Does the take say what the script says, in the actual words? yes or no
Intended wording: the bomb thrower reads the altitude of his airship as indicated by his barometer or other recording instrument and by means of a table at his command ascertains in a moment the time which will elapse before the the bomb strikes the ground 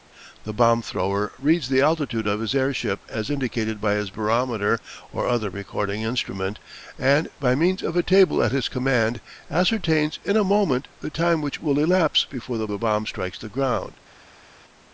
yes